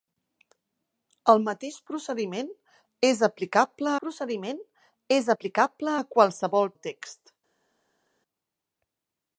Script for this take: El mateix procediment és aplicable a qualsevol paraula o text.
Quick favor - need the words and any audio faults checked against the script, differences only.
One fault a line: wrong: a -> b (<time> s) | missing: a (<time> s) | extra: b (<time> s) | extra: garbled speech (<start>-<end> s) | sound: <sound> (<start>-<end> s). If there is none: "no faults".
extra: procediment és aplicable (4.0 s)
missing: paraula (6.7 s)